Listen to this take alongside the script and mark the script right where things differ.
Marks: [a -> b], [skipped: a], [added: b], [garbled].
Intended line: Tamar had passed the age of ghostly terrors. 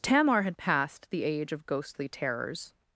Tamar had passed the age of ghostly terrors.